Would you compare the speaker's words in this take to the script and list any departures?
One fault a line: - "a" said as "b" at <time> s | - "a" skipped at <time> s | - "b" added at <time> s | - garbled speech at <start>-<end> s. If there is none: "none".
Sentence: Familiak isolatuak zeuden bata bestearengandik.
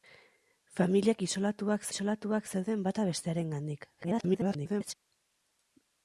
- "isolatuak" added at 1.9 s
- garbled speech at 4.0-4.9 s